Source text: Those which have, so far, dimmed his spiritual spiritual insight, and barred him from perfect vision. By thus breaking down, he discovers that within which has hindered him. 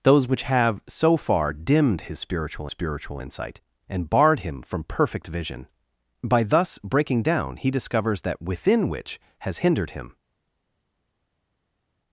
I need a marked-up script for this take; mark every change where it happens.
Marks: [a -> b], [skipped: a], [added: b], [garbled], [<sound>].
Those which have, so far, dimmed his spiritual spiritual insight, and barred him from perfect vision. By thus breaking down, he discovers that within which has hindered him.